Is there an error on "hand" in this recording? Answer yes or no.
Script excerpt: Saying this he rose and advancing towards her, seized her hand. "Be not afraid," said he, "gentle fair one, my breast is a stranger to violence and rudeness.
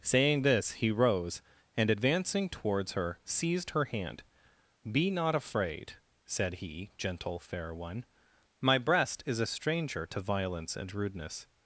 no